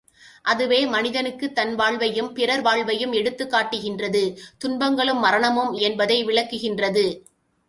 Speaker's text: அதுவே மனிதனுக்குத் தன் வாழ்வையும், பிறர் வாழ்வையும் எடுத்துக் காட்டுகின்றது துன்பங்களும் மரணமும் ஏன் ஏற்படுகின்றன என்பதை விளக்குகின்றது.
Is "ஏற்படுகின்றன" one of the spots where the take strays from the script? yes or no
yes